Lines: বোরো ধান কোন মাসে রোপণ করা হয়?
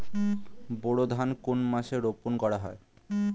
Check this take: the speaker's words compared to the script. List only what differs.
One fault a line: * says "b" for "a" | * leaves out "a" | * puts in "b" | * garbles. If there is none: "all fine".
all fine